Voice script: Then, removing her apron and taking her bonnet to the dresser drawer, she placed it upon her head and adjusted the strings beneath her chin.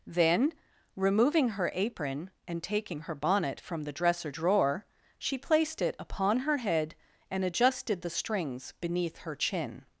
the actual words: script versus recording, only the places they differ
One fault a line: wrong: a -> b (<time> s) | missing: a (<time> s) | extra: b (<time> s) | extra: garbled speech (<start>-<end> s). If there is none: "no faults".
wrong: to -> from (3.6 s)